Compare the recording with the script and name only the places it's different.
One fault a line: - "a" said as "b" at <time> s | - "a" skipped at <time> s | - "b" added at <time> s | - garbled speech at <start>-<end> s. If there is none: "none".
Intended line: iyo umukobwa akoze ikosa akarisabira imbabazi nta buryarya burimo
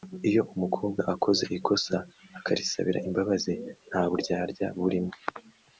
none